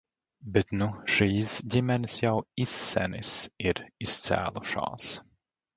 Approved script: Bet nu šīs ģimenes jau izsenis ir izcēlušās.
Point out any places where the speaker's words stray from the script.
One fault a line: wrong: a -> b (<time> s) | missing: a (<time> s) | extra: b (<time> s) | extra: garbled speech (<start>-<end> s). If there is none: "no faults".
no faults